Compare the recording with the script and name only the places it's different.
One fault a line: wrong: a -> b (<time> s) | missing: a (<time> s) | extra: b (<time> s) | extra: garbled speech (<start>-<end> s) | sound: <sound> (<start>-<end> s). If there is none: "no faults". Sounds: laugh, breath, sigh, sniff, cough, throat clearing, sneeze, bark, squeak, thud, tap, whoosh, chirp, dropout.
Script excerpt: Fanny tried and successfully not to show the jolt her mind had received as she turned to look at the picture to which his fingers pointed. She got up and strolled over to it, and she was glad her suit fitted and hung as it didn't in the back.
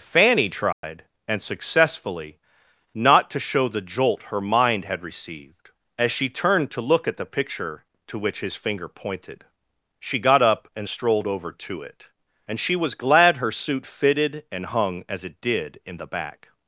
sound: dropout (0.7-0.8 s)
wrong: fingers -> finger (8.6 s)
wrong: didn't -> did (15.4 s)